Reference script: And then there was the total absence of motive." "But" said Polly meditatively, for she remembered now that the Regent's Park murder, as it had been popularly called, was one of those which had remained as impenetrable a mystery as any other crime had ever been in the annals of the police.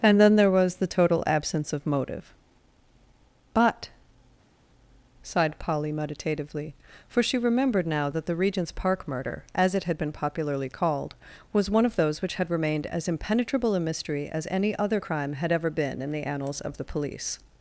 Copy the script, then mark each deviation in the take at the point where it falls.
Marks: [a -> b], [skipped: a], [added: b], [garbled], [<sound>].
And then there was the total absence of motive." "But" [said -> sighed] Polly meditatively, for she remembered now that the Regent's Park murder, as it had been popularly called, was one of those which had remained as impenetrable a mystery as any other crime had ever been in the annals of the police.